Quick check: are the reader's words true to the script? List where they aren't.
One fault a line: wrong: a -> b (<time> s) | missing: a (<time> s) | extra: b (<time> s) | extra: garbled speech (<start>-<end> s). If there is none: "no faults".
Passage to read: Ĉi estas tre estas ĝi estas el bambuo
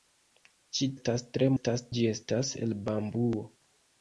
no faults